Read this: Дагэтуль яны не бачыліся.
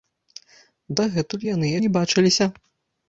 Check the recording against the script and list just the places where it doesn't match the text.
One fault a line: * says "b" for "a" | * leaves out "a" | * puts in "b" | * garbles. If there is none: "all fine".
all fine